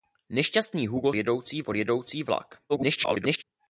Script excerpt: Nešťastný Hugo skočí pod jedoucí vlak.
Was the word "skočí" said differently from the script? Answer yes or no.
yes